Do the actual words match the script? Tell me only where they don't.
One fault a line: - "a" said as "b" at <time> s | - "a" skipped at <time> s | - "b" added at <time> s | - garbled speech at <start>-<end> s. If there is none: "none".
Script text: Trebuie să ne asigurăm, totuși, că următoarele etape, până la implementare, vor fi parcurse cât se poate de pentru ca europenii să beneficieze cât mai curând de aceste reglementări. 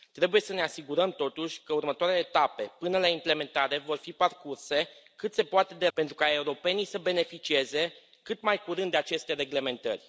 none